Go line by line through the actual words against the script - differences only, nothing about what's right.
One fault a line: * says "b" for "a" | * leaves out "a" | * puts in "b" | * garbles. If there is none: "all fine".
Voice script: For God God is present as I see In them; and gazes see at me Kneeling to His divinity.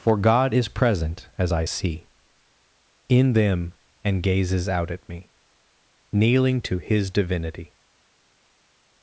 * leaves out "God"
* says "out" for "see"